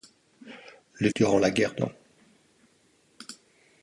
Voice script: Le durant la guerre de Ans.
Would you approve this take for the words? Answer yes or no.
yes